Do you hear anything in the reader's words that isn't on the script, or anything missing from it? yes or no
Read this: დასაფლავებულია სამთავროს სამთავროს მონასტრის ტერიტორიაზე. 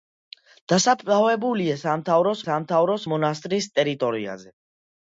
no